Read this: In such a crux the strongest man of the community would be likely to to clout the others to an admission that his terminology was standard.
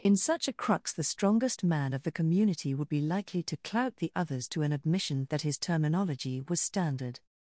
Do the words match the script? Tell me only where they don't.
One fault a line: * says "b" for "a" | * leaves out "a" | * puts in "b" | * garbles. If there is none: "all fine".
* leaves out "to"